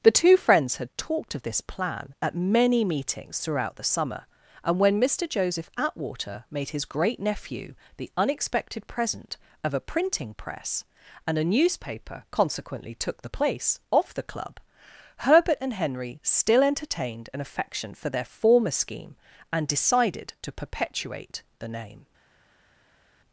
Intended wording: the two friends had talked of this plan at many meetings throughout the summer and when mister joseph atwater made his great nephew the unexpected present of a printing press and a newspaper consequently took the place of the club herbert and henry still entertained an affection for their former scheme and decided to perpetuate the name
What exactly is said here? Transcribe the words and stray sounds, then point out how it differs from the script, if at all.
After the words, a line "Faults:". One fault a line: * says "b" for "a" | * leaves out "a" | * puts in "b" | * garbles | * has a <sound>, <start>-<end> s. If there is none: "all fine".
the two friends had talked of this plan at many meetings throughout the summer and when mister joseph atwater made his great nephew the unexpected present of a printing press and a newspaper consequently took the place of the club herbert and henry still entertained an affection for their former scheme and decided to perpetuate the name
Faults:
all fine